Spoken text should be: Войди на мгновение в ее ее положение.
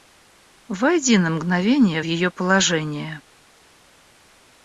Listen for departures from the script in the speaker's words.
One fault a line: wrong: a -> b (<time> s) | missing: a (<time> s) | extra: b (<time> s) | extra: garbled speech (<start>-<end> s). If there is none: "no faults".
missing: ее (2.3 s)